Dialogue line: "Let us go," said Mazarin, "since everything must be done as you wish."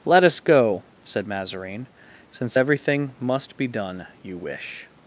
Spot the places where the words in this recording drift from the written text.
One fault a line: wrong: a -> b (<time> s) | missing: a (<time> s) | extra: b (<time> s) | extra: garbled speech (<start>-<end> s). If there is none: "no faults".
missing: as (4.0 s)